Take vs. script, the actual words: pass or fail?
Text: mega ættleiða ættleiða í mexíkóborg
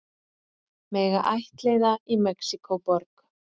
fail